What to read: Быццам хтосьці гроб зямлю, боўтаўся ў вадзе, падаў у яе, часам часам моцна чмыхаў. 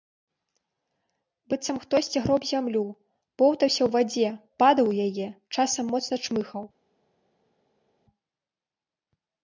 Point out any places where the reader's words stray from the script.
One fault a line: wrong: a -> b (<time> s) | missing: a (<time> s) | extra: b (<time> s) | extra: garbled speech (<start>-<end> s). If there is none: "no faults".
missing: часам (5.8 s)